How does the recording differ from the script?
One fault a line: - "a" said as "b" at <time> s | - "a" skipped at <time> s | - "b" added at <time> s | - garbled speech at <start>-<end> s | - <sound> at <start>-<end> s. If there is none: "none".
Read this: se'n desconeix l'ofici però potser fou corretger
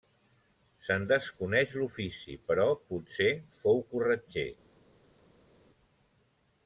none